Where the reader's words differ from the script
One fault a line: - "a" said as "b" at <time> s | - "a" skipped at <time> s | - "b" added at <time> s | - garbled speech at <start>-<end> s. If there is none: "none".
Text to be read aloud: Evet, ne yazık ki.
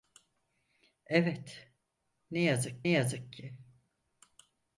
- "yazık" added at 2.9 s